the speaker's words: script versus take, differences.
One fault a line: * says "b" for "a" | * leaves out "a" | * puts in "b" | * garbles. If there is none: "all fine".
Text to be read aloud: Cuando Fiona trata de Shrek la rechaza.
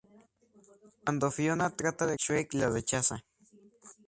all fine